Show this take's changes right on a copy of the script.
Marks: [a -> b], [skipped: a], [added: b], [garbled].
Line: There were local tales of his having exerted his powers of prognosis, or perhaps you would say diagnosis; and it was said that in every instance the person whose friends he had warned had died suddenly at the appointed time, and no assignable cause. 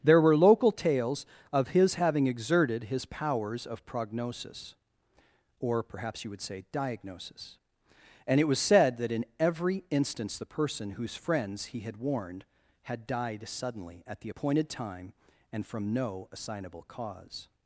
There were local tales of his having exerted his powers of prognosis, or perhaps you would say diagnosis; and it was said that in every instance the person whose friends he had warned had died suddenly at the appointed time, and [added: from] no assignable cause.